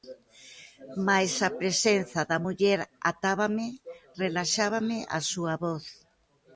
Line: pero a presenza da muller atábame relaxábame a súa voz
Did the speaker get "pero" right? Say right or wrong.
wrong